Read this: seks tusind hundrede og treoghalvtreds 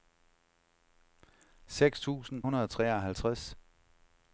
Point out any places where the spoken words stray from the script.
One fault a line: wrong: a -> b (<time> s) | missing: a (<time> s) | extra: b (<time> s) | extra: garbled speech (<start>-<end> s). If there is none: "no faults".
no faults